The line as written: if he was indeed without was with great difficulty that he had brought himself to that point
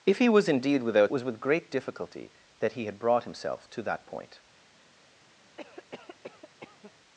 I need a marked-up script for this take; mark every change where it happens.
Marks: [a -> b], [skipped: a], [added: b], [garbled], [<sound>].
if he was indeed without was with great difficulty that he had brought himself to that point [cough]